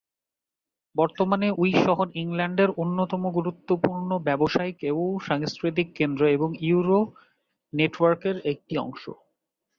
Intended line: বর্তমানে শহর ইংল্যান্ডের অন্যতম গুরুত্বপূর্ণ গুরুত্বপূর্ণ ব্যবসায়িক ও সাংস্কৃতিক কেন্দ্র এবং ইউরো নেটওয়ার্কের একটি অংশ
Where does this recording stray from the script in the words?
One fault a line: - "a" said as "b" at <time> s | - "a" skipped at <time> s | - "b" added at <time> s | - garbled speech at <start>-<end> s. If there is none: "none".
- "উই" added at 1.6 s
- "গুরুত্বপূর্ণ" skipped at 4.1 s